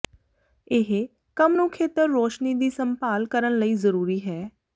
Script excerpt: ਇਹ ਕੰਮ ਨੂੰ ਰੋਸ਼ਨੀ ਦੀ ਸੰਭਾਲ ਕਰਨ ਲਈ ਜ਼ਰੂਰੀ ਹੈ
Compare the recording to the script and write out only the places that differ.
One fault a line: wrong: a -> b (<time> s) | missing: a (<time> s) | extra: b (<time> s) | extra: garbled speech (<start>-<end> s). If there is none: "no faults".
extra: ਖੇਤਰ (1.7 s)